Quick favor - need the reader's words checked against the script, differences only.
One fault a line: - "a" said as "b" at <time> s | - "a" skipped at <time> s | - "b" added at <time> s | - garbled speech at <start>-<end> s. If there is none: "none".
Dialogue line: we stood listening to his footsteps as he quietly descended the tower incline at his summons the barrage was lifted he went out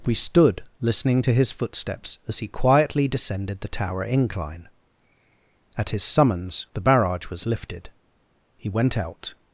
none